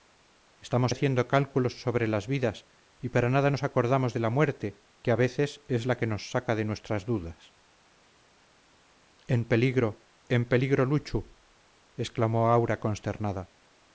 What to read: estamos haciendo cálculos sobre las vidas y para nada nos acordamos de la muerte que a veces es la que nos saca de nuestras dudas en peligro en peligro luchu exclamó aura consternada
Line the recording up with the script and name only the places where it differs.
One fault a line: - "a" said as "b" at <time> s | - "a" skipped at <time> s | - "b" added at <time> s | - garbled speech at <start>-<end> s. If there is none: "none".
none